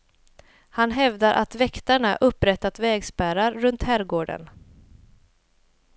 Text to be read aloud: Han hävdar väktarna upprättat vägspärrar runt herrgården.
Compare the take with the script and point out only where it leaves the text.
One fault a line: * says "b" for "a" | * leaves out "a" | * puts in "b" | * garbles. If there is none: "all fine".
* puts in "att"